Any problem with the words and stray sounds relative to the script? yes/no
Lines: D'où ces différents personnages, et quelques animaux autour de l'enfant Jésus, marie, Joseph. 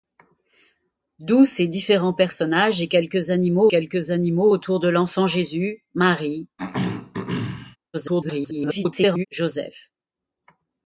yes